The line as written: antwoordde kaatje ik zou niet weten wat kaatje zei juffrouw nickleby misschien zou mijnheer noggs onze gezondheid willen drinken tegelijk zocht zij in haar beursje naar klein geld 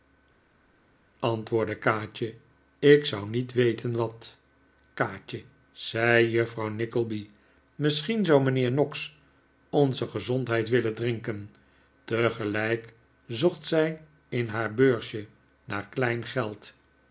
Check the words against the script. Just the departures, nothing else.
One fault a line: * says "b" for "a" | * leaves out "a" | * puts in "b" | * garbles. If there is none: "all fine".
all fine